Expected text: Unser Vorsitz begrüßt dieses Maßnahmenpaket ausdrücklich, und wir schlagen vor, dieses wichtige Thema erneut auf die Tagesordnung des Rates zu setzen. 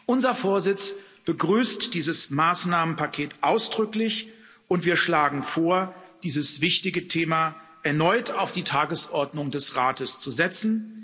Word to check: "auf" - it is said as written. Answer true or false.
true